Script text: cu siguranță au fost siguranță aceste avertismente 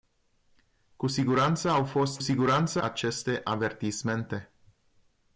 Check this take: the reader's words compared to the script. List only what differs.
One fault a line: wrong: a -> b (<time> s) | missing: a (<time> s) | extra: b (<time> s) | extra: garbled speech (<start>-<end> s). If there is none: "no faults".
no faults